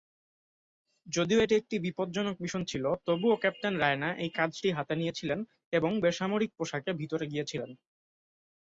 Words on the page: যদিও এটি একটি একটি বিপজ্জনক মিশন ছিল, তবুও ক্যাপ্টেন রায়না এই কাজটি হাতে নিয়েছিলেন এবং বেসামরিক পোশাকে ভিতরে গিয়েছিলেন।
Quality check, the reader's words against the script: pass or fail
fail